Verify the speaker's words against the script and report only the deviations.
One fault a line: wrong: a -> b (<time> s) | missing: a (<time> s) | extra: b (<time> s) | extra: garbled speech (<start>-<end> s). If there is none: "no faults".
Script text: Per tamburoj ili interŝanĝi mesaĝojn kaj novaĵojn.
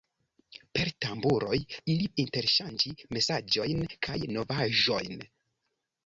no faults